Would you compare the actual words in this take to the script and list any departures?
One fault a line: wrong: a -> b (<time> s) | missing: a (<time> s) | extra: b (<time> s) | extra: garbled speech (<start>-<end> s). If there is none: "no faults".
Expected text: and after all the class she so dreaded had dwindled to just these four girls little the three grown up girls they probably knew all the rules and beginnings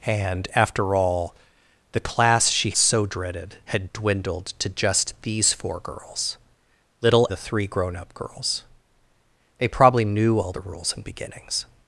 no faults